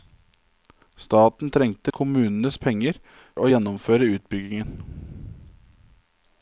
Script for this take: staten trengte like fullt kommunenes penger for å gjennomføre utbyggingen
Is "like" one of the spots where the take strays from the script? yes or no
yes